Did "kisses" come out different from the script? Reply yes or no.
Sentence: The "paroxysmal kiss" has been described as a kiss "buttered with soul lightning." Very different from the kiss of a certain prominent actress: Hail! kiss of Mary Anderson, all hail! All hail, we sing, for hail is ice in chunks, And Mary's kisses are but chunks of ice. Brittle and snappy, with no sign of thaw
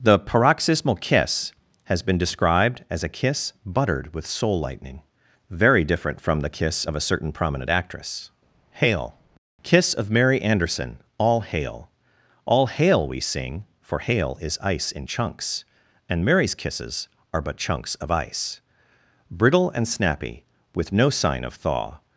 no